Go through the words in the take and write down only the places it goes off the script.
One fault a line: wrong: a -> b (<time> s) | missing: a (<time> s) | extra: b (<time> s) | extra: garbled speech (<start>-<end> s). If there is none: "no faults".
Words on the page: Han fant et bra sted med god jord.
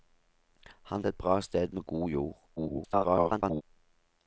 missing: fant (1.1 s)
extra: garbled speech (2.6-3.6 s)